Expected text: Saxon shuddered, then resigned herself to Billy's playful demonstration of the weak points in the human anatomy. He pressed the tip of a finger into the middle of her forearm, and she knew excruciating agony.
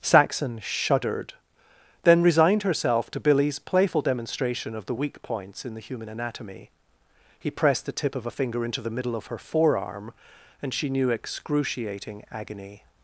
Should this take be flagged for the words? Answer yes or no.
no